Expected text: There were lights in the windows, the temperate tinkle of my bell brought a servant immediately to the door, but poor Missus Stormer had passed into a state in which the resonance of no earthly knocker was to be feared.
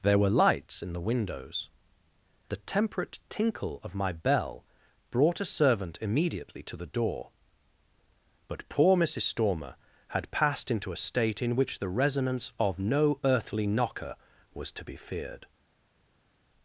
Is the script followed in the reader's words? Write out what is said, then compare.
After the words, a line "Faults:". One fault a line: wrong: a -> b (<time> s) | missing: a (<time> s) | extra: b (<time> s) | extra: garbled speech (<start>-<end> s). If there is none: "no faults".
There were lights in the windows, the temperate tinkle of my bell brought a servant immediately to the door, but poor Missus Stormer had passed into a state in which the resonance of no earthly knocker was to be feared.
Faults:
no faults